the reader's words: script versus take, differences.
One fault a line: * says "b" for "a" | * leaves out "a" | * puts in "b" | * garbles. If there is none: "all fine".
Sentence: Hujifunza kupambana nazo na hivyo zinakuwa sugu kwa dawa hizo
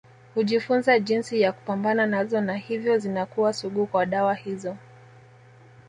* puts in "jinsi ya"